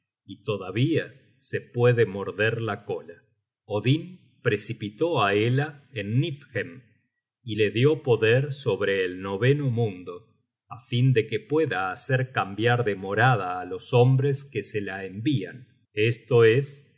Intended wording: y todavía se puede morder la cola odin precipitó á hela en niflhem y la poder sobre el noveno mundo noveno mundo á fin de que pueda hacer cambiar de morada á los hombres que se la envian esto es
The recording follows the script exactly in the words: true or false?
false